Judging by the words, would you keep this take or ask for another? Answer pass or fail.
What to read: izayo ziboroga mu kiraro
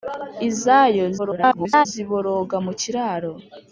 fail